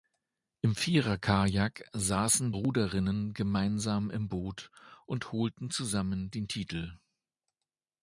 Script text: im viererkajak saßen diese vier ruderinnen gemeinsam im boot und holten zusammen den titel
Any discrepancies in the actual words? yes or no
yes